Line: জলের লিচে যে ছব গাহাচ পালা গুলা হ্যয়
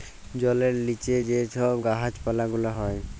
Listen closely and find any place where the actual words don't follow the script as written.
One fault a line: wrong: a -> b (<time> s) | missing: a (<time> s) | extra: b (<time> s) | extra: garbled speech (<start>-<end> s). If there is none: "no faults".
no faults